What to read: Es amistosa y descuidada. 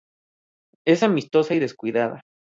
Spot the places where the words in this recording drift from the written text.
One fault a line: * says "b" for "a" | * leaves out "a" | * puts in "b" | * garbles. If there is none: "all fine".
all fine